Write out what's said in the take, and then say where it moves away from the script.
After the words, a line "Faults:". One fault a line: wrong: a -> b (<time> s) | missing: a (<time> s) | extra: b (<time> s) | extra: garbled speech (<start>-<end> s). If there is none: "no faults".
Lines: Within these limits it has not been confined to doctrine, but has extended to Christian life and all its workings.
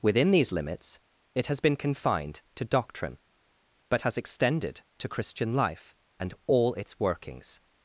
Within these limits it has been confined to doctrine, but has extended to Christian life and all its workings.
Faults:
missing: not (1.6 s)